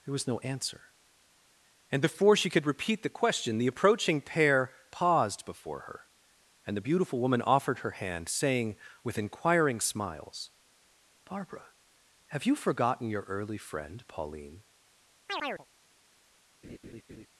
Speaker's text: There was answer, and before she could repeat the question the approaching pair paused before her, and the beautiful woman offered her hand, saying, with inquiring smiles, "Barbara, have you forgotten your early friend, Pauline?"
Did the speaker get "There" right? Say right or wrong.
right